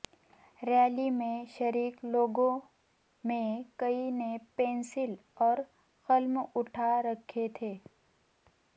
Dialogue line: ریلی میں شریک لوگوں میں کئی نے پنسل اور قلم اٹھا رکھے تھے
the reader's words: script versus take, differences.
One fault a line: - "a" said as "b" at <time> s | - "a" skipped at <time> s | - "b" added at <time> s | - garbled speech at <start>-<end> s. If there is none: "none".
none